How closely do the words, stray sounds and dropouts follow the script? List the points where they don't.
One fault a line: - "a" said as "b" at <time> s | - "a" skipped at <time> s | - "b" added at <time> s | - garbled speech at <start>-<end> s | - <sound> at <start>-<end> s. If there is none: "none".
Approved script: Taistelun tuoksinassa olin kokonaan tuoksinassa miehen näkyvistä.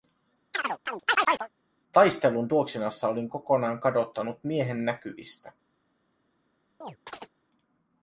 - chirp at 0.5-1.5 s
- "tuoksinassa" said as "kadottanut" at 3.8 s
- chirp at 6.8-7.3 s